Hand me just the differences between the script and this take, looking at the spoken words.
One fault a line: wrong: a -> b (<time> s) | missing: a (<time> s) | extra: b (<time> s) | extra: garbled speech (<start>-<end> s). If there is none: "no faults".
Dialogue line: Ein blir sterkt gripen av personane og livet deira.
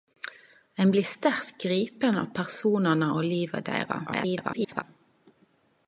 extra: garbled speech (4.1-4.8 s)